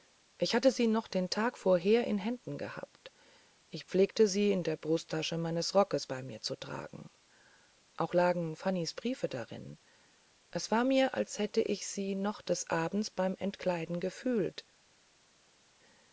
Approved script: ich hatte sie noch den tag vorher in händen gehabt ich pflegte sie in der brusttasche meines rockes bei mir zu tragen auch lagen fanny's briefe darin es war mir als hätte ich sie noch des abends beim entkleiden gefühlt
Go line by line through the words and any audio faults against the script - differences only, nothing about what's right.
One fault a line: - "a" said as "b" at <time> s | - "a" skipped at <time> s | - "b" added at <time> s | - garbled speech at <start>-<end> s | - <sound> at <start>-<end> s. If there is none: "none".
none